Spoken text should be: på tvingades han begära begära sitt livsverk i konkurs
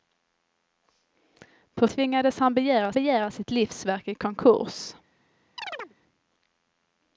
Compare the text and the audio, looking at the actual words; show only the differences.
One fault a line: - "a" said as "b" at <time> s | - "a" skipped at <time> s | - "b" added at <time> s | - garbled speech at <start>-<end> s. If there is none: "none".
none